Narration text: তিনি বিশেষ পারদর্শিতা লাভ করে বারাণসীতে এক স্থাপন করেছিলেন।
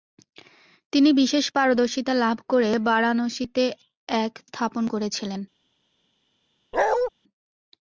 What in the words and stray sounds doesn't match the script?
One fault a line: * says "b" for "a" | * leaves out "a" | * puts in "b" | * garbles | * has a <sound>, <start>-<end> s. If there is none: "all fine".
* has a bark, 6.7-7.1 s